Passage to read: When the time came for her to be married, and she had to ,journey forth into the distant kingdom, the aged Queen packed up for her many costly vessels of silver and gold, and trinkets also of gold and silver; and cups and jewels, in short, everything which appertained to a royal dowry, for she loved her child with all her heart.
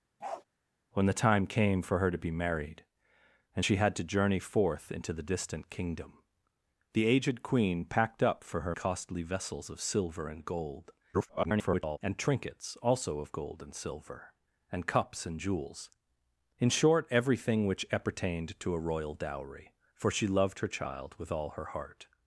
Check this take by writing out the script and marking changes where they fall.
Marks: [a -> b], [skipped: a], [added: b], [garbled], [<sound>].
[bark] When the time came for her to be married, and she had to ,journey forth into the distant kingdom, the aged Queen packed up for her [skipped: many] costly vessels of silver and gold, [garbled] and trinkets also of gold and silver; and cups and jewels, in short, everything which appertained to a royal dowry, for she loved her child with all her heart.